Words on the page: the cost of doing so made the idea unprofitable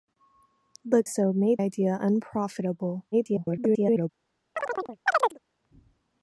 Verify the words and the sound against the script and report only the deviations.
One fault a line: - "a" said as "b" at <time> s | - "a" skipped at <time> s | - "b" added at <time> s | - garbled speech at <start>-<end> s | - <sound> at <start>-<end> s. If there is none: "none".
- "cost of doing" skipped at 1.0 s
- "the" skipped at 1.6 s
- garbled speech at 3.1-4.1 s
- chirp at 4.6-5.4 s